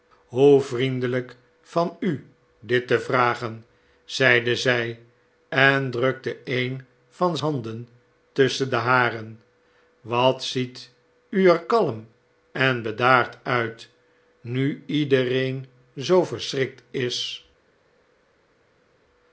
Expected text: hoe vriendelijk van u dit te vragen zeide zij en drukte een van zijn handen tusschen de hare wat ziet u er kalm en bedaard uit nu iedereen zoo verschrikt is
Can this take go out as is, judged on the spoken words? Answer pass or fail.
fail